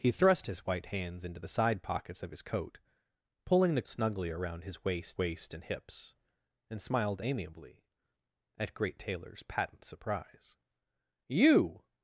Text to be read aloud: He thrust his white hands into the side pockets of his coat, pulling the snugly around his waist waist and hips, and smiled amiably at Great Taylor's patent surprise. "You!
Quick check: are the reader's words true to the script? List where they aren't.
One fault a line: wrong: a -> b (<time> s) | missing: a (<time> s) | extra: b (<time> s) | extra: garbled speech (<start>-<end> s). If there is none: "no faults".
no faults